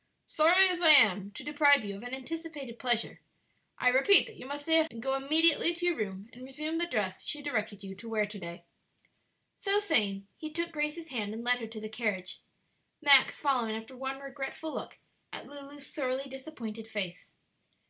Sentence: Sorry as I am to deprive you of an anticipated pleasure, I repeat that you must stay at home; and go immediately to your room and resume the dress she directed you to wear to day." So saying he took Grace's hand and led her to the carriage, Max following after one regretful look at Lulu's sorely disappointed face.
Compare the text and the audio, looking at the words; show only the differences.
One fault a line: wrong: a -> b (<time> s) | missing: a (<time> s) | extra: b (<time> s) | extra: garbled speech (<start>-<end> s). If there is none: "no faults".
missing: home (4.9 s)